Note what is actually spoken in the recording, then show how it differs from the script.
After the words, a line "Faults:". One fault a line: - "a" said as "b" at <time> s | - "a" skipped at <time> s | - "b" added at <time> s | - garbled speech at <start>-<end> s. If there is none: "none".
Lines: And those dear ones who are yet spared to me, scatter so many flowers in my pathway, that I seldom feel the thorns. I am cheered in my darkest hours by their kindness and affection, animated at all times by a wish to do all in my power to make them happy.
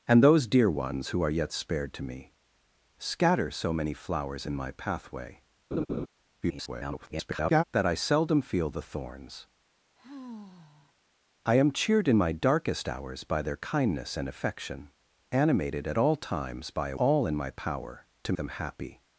And those dear ones who are yet spared to me, scatter so many flowers in my pathway, [garbled] that I seldom feel the thorns. I am cheered in my darkest hours by their kindness and affection, animated at all times by a all in my power to them happy.
Faults:
- garbled speech at 6.4-7.6 s
- "wish to do" skipped at 17.0 s
- "make" skipped at 18.3 s